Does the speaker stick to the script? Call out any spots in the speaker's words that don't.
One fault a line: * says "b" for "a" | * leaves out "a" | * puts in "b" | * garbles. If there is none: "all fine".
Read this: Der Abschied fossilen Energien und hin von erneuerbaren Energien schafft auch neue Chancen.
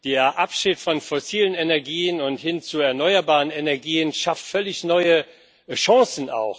* puts in "von"
* says "zu" for "von"
* puts in "völlig"